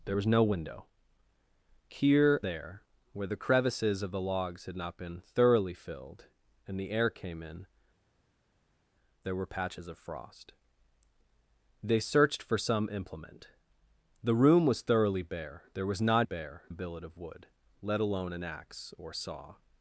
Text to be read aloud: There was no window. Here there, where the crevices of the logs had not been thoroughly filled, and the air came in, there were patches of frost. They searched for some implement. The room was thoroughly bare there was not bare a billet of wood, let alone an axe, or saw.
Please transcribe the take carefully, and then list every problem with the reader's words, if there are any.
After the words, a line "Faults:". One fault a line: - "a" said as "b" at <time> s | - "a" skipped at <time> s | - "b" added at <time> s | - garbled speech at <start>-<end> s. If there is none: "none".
There was no window. Here there, where the crevices of the logs had not been thoroughly filled, and the air came in, there were patches of frost. They searched for some implement. The room was thoroughly bare there was not bare a billet of wood, let alone an axe, or saw.
Faults:
none